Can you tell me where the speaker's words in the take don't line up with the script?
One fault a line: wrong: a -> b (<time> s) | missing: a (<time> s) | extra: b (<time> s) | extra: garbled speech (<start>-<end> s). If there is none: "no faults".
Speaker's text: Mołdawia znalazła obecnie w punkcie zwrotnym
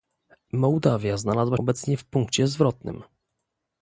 no faults